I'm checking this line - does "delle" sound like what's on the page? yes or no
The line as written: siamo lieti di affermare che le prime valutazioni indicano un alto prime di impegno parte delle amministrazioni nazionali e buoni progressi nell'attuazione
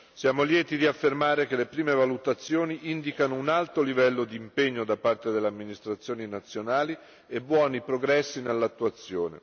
yes